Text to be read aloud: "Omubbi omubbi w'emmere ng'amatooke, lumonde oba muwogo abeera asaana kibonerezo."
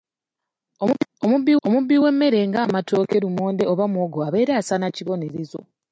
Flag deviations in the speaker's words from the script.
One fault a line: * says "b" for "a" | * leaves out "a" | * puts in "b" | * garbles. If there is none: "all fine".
all fine